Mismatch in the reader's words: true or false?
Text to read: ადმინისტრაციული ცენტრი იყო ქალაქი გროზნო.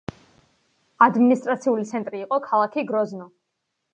false